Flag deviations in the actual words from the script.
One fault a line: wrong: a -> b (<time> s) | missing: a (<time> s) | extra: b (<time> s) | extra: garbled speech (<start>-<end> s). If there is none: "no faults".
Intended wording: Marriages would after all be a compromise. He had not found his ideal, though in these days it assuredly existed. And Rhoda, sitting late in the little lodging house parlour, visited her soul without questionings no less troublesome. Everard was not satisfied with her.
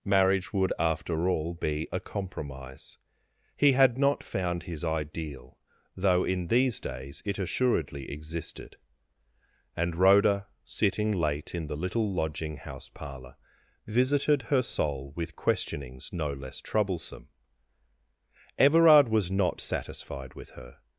wrong: Marriages -> Marriage (0.0 s)
wrong: without -> with (15.2 s)